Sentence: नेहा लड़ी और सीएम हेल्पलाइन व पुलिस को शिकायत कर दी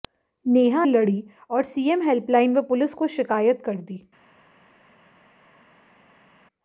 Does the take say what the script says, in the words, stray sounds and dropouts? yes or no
yes